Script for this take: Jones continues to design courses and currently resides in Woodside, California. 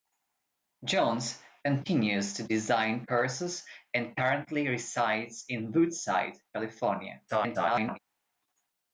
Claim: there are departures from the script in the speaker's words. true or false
true